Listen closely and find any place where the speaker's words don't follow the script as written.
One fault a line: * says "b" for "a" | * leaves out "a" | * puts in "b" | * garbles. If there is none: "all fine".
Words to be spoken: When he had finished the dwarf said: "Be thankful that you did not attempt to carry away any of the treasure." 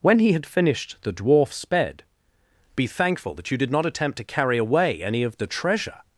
* says "sped" for "said"